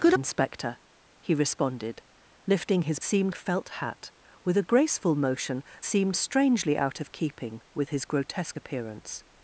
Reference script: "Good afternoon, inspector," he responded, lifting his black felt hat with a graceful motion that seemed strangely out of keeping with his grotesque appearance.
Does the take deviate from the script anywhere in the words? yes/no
yes